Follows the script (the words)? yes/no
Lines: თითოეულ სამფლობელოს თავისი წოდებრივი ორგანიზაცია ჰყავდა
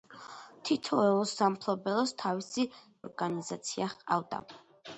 no